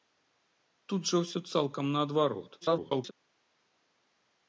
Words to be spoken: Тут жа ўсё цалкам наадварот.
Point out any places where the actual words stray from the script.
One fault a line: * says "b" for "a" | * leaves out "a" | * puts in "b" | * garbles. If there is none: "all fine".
* garbles